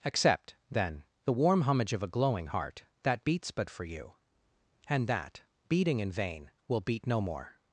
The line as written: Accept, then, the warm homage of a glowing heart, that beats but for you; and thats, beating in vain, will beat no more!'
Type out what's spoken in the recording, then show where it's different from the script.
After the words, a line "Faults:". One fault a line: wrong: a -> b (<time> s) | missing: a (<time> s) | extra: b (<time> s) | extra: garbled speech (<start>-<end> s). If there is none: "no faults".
Accept, then, the warm homage of a glowing heart, that beats but for you; and that, beating in vain, will beat no more!'
Faults:
wrong: thats -> that (5.1 s)